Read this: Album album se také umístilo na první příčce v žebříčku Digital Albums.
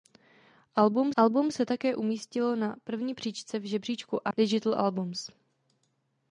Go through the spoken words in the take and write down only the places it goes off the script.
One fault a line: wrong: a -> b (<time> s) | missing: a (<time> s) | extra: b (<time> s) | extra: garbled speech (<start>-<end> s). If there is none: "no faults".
no faults